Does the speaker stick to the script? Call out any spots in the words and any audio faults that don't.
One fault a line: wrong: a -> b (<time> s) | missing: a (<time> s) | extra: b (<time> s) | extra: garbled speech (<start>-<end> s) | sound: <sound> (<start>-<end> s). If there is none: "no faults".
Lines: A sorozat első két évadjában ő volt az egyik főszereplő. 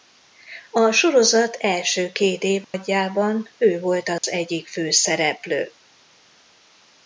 sound: dropout (2.6-2.7 s)
sound: dropout (4.2-4.2 s)